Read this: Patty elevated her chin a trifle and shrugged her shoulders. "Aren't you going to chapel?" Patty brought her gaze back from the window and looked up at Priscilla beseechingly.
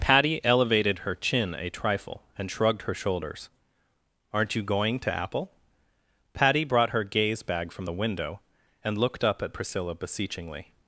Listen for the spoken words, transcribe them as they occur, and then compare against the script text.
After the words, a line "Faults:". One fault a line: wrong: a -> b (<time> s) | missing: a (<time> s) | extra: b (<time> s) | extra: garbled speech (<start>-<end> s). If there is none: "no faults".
Patty elevated her chin a trifle and shrugged her shoulders. "Aren't you going to apple?" Patty brought her gaze bag from the window and looked up at Priscilla beseechingly.
Faults:
wrong: chapel -> apple (5.1 s)
wrong: back -> bag (7.4 s)